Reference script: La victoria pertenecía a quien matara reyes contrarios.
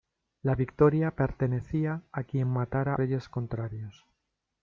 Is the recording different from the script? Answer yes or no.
no